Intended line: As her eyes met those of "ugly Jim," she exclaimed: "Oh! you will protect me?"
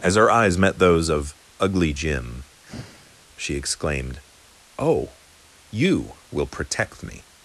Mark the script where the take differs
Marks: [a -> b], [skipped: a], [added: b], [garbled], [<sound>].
As her eyes met those of "ugly Jim," [sigh] she exclaimed: "Oh! you will protect me?"